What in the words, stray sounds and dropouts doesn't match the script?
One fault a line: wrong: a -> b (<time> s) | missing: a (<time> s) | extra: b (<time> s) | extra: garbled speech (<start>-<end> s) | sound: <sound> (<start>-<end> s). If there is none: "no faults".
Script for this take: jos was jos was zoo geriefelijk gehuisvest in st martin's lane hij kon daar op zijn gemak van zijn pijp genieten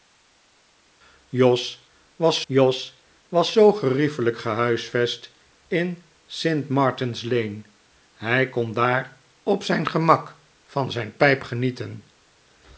no faults